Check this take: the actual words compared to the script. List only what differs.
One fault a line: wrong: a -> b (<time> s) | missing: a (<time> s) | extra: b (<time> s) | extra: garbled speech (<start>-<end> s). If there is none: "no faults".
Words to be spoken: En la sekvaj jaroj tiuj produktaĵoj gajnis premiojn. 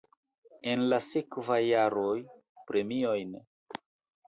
missing: tiuj produktaĵoj gajnis (2.1 s)